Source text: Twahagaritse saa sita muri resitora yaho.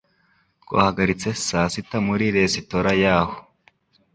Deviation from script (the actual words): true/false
false